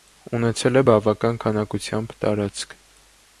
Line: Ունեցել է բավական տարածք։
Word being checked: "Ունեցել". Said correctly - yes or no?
yes